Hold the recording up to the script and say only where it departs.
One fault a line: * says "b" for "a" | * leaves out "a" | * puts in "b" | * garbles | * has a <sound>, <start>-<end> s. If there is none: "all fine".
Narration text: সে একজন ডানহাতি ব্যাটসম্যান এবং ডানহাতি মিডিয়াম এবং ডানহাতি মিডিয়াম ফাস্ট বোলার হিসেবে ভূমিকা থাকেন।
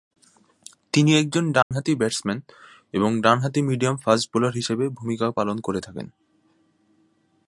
* says "তিনি" for "সে"
* has a dropout, 1.6-1.7 s
* leaves out "এবং ডানহাতি মিডিয়াম"
* puts in "পালন করে"